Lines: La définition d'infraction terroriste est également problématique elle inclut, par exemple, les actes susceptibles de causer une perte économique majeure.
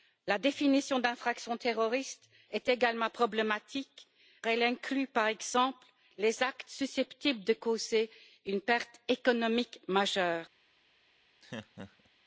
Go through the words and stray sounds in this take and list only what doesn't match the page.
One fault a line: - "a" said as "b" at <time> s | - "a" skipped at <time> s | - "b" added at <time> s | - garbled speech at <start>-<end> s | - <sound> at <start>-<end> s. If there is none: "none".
- laugh at 11.4-12.1 s